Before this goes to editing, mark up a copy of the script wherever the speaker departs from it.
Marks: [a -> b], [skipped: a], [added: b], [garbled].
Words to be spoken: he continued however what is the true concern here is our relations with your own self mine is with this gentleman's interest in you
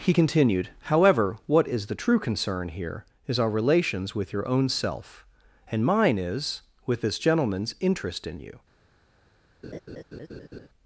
he continued however what is the true concern here is our relations with your own self [added: and] mine is with this gentleman's interest in you